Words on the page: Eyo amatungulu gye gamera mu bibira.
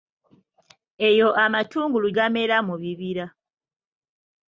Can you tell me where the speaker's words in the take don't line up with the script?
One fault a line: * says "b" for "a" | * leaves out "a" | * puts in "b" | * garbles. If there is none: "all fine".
* leaves out "gye"